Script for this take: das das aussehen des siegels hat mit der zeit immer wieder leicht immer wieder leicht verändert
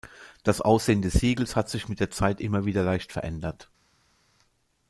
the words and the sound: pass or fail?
fail